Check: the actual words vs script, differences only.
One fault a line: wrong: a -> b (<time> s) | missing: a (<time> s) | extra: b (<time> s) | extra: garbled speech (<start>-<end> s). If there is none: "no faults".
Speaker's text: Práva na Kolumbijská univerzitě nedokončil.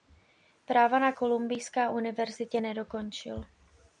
no faults